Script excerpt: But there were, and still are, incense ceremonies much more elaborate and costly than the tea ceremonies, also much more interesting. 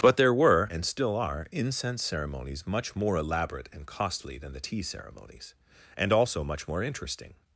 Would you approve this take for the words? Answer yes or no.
no